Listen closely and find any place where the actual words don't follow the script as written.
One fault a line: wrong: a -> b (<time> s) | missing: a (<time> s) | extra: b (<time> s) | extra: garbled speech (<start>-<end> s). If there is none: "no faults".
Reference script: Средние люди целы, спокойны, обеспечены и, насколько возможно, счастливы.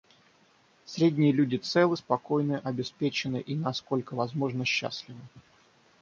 no faults